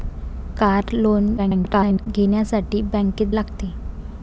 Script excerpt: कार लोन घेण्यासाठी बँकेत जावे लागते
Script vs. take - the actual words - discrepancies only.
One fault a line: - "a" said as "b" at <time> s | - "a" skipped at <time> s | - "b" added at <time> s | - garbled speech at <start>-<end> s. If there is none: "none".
- garbled speech at 1.4-2.1 s
- "जावे" skipped at 3.3 s